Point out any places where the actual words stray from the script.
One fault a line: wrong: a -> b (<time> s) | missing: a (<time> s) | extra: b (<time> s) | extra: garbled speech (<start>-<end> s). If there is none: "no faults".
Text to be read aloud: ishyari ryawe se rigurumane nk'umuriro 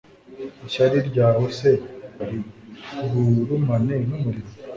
no faults